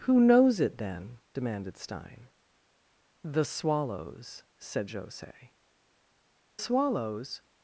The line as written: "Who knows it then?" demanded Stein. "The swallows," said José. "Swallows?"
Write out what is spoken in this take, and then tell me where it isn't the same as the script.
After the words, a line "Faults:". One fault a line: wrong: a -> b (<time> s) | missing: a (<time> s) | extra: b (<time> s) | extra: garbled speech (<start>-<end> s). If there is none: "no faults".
"Who knows it then?" demanded Stein. "The swallows," said José. "Swallows?"
Faults:
no faults